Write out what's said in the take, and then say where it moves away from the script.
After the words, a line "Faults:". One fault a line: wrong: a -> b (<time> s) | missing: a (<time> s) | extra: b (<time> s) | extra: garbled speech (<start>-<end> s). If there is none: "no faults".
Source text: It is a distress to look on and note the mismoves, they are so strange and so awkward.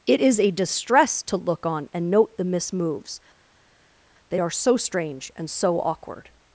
It is a distress to look on and note the mismoves, they are so strange and so awkward.
Faults:
no faults